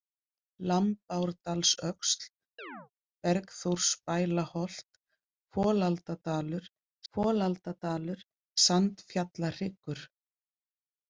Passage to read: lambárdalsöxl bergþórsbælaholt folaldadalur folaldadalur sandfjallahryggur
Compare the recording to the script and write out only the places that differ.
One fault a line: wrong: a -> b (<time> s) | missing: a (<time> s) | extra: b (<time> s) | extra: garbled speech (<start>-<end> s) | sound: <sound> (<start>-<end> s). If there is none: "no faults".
sound: chirp (2.6-2.9 s)